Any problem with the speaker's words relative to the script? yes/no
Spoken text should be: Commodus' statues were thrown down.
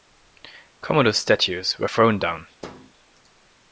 no